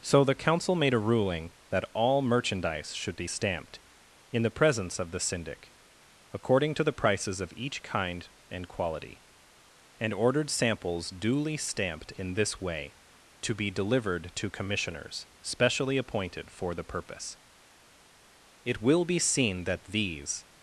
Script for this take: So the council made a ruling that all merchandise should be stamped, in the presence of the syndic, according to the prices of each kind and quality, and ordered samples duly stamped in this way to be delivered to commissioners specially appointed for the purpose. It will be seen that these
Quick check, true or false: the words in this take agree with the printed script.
true